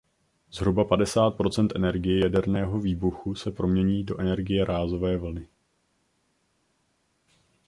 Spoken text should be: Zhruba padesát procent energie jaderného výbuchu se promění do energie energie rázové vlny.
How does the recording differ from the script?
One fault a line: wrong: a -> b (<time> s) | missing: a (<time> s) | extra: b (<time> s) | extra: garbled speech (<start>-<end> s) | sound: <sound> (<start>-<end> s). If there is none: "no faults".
missing: energie (4.6 s)